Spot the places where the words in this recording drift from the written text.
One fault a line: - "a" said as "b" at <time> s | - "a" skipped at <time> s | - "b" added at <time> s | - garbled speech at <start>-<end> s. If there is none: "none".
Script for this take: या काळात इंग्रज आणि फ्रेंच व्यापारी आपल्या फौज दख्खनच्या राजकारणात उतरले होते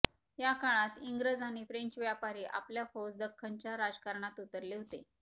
none